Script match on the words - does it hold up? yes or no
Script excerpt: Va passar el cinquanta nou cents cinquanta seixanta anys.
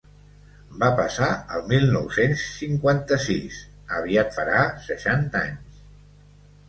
no